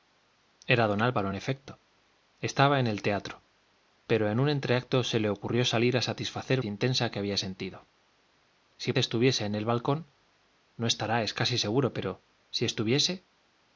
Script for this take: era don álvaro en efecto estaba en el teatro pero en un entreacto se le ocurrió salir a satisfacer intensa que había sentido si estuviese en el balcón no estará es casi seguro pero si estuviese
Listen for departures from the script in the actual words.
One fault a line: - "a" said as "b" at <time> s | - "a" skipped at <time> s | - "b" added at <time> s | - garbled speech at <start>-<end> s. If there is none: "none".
none